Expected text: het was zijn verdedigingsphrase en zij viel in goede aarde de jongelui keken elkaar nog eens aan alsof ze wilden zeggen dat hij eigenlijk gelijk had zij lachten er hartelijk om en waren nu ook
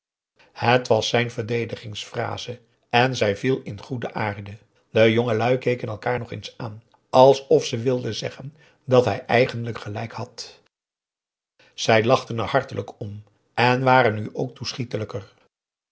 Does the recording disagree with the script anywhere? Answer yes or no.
no